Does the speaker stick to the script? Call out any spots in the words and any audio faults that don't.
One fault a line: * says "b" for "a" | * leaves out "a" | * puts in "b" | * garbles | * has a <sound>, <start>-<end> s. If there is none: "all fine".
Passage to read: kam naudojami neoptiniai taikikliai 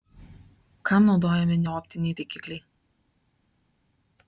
all fine